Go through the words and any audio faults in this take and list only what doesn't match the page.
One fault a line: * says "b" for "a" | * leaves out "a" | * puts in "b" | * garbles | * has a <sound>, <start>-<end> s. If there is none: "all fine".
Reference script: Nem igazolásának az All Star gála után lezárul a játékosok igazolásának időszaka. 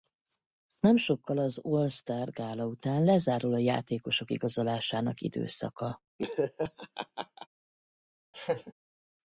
* says "sokkal" for "igazolásának"
* has a laugh, 6.2-7.5 s
* has a laugh, 8.3-8.7 s